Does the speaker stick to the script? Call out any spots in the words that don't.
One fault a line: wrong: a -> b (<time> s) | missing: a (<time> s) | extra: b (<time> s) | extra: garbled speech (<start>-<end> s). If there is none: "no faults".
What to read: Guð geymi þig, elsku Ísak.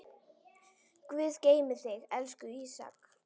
no faults